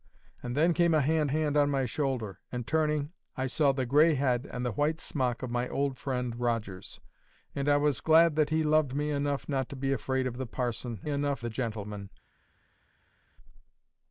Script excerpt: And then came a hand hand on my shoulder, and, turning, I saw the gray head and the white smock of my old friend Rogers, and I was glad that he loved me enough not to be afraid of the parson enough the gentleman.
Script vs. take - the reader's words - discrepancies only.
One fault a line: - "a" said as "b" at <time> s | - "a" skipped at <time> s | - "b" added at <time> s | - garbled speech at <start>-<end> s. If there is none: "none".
none